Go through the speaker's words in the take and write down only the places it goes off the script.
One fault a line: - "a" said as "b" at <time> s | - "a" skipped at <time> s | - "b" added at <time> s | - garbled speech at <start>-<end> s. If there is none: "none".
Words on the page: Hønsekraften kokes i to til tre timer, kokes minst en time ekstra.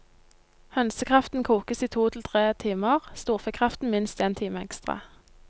- "kokes" said as "storfekraften" at 3.1 s